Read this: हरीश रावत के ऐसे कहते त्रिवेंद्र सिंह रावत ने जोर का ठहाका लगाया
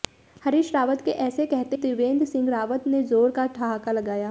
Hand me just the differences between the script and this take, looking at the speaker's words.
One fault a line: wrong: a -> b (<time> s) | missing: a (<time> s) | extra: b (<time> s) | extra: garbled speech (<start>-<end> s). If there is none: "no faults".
no faults